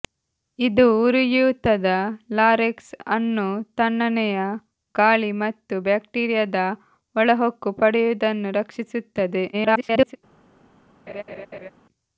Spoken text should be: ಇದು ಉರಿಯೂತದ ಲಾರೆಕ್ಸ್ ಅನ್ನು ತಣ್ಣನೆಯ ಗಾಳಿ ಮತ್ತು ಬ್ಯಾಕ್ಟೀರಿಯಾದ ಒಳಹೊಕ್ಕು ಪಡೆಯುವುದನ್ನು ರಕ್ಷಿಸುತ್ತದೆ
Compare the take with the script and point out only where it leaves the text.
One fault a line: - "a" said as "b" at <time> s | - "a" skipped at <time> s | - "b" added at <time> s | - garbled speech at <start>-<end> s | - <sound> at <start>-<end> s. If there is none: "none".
- garbled speech at 9.5-10.2 s
- laugh at 11.1-11.7 s